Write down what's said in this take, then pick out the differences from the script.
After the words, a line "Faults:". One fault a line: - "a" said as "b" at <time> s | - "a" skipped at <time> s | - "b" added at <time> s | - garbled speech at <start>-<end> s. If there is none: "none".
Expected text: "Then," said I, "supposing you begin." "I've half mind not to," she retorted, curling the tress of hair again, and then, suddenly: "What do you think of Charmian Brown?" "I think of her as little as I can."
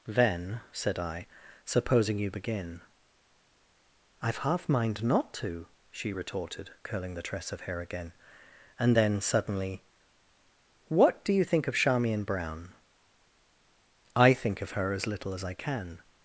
"Then," said I, "supposing you begin." "I've half mind not to," she retorted, curling the tress of hair again, and then, suddenly: "What do you think of Charmian Brown?" "I think of her as little as I can."
Faults:
none